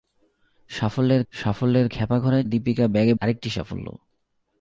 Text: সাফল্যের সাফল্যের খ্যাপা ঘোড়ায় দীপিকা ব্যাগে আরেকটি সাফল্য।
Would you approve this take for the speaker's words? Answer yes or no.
yes